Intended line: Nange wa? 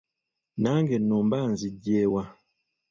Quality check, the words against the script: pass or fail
fail